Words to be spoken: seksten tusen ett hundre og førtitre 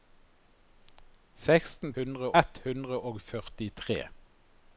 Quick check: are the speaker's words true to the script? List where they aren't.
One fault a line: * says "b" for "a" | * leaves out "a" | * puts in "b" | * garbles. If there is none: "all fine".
* says "hundre" for "tusen"